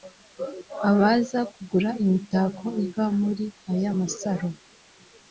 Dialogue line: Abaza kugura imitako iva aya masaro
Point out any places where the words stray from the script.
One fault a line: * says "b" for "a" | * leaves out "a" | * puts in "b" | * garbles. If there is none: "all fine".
* puts in "muri"